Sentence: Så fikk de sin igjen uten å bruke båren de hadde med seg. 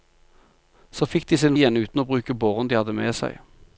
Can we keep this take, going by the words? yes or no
yes